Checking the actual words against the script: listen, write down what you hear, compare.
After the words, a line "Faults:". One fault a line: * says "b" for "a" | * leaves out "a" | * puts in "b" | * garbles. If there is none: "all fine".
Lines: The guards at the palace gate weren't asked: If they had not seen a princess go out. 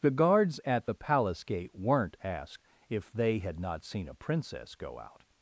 The guards at the palace gate weren't asked: If they had not seen a princess go out.
Faults:
all fine